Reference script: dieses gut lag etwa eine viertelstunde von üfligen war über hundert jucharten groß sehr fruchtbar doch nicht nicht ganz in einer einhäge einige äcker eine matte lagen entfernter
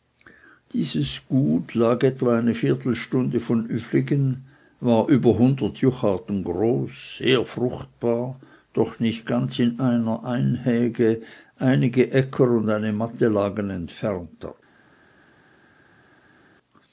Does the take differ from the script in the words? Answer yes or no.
yes